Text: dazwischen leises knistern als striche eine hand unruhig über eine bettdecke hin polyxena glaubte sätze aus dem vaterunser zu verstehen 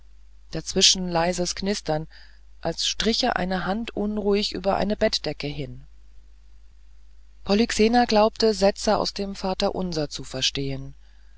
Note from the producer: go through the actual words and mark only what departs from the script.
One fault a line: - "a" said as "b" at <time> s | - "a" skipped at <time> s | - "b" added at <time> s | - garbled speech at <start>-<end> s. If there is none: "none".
none